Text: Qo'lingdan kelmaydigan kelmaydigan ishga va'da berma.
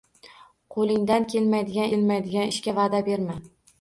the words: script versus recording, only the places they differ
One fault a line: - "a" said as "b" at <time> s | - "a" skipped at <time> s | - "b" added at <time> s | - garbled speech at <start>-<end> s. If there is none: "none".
none